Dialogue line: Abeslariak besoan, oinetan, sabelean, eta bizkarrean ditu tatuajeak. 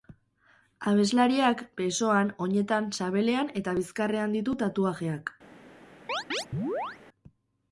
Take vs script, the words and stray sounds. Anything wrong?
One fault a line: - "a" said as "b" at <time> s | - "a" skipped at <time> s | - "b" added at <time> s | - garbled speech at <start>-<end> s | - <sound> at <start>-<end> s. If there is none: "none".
- chirp at 6.1-7.0 s